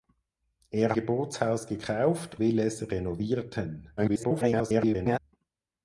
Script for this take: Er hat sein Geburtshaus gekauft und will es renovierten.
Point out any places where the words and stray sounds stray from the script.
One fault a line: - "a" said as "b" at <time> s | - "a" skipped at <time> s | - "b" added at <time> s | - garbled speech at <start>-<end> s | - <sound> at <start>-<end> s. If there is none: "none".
- "hat sein" skipped at 0.9 s
- "und" skipped at 2.4 s
- garbled speech at 4.0-5.2 s